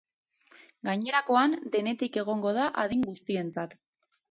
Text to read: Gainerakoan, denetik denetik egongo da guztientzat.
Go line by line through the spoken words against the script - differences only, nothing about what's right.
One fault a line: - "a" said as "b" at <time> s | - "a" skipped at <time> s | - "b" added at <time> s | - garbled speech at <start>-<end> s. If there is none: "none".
- "denetik" skipped at 2.2 s
- "adin" added at 2.9 s